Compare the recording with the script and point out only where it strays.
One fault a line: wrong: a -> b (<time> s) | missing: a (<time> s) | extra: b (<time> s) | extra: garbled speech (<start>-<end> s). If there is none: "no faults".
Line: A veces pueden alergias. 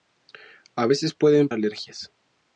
no faults